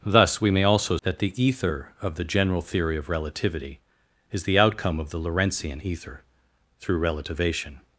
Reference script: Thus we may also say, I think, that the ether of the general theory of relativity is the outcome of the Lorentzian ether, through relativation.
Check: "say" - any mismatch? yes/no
yes